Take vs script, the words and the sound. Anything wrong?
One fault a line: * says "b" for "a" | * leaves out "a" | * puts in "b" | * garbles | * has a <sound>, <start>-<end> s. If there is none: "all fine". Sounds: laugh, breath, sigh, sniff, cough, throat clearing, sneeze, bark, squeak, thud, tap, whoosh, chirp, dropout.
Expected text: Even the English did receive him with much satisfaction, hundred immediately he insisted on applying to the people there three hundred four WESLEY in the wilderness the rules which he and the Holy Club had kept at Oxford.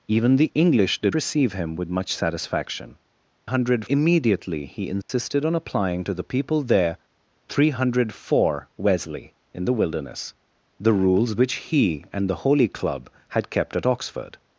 * has a dropout, 5.0-5.1 s